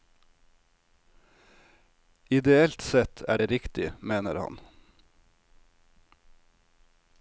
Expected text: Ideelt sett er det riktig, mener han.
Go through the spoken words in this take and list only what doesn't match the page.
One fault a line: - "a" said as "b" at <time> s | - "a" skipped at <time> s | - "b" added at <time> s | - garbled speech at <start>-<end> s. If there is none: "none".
none